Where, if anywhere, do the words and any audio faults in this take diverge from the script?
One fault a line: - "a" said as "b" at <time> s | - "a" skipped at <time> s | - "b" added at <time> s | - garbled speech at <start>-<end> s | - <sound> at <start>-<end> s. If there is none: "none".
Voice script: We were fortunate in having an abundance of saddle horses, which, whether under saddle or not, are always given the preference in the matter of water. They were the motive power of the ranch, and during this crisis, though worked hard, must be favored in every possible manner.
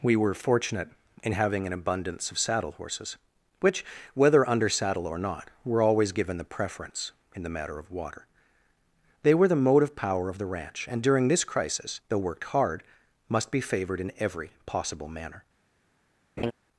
- "are" said as "were" at 5.6 s
- laugh at 16.4-16.5 s